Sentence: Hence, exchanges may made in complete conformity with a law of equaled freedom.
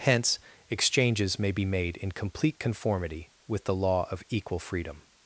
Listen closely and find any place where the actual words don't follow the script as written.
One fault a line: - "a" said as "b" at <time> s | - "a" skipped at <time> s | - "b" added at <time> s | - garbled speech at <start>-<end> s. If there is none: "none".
- "be" added at 1.5 s
- "a" said as "the" at 3.6 s
- "equaled" said as "equal" at 4.3 s